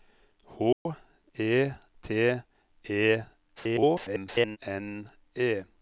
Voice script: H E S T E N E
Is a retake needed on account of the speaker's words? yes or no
yes